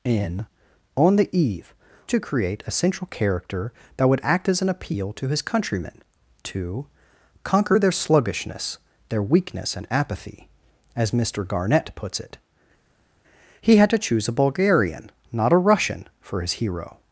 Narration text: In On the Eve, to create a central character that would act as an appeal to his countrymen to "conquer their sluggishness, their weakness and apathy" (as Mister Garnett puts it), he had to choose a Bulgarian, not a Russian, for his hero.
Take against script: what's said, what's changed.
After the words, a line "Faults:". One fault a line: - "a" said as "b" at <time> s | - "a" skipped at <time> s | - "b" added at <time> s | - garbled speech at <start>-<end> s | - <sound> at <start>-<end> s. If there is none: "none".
In On the Eve, to create a central character that would act as an appeal to his countrymen to "conquer their sluggishness, their weakness and apathy" (as Mister Garnett puts it), he had to choose a Bulgarian, not a Russian, for his hero.
Faults:
none